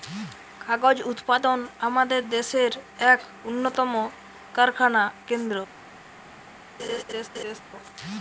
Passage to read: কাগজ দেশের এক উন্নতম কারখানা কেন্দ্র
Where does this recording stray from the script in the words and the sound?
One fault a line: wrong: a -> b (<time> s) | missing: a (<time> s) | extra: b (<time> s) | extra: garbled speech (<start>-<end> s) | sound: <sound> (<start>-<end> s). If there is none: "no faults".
extra: উৎপাদন আমাদের (1.1 s)
sound: laugh (6.8-7.6 s)